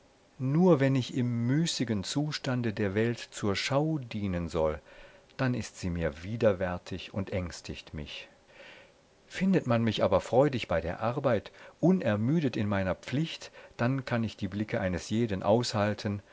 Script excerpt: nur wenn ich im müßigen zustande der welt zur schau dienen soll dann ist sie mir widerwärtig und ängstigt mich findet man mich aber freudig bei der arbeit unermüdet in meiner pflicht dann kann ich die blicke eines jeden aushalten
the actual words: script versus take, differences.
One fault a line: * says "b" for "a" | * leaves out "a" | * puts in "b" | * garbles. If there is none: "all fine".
all fine